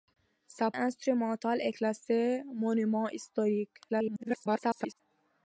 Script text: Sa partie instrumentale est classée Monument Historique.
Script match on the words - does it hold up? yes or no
no